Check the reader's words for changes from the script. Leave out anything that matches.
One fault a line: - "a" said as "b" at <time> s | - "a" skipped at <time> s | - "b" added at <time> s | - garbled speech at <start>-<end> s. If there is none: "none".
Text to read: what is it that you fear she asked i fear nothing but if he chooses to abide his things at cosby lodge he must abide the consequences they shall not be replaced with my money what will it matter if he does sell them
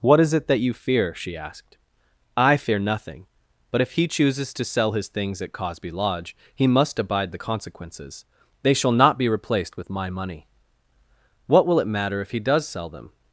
- "abide" said as "sell" at 4.7 s